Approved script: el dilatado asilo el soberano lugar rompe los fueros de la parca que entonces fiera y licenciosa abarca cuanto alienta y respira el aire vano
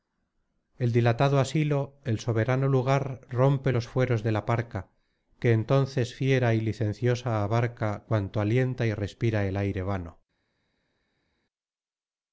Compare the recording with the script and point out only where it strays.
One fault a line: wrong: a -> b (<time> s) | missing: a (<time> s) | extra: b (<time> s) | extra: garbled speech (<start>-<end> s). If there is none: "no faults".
no faults